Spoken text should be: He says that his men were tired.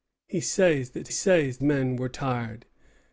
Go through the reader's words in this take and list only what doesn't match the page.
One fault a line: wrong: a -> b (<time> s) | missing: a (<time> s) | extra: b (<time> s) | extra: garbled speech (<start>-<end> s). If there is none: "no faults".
wrong: his -> says (1.1 s)